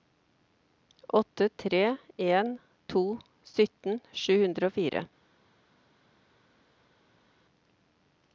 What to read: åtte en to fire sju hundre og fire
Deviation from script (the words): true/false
true